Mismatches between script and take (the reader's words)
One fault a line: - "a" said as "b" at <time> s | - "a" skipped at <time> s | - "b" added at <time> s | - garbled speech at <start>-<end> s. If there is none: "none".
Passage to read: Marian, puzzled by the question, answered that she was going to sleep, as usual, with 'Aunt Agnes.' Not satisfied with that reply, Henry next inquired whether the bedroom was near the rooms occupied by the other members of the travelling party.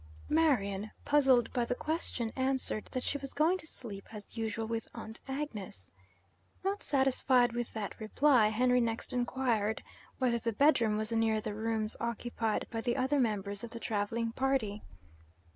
none